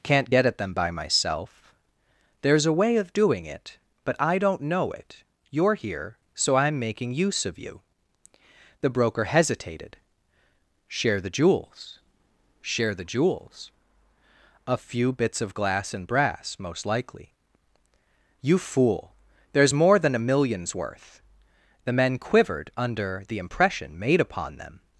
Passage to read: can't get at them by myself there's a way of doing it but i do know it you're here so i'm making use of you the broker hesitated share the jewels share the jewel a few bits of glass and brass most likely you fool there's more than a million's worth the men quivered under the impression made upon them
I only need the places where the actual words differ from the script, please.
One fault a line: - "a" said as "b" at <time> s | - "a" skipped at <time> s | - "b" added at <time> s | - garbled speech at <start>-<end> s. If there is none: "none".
- "do" said as "don't" at 4.4 s
- "jewel" said as "jewels" at 13.0 s